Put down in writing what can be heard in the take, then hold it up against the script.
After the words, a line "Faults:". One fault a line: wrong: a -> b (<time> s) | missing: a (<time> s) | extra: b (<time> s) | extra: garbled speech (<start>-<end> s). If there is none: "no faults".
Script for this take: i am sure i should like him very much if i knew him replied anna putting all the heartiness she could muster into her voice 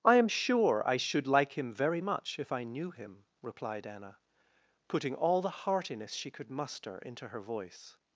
i am sure i should like him very much if i knew him replied anna putting all the heartiness she could muster into her voice
Faults:
no faults